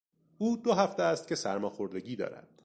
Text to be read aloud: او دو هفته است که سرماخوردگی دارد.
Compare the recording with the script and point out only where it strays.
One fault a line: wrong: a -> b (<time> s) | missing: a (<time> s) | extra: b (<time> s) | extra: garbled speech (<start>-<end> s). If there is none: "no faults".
no faults